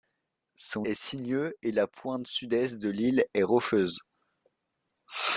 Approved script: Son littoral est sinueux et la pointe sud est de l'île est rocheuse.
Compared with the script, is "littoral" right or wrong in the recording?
wrong